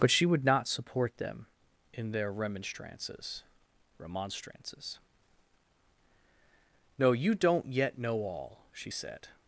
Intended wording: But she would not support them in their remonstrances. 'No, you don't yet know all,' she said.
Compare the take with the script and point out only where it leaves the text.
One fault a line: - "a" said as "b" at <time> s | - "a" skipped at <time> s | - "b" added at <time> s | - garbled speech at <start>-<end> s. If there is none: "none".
- "remonstrances" added at 4.0 s